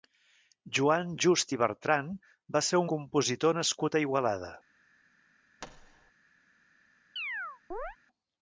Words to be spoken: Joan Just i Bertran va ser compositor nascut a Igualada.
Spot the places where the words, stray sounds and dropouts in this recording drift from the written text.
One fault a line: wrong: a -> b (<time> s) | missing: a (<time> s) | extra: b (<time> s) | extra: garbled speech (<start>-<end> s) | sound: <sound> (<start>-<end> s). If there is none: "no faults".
sound: thud (5.6-6.1 s)
sound: chirp (7.2-8.0 s)